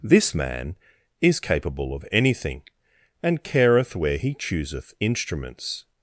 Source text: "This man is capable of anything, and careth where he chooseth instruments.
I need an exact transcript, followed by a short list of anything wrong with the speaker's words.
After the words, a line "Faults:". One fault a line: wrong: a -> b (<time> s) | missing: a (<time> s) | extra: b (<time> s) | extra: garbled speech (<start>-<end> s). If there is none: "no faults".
"This man is capable of anything, and careth where he chooseth instruments.
Faults:
no faults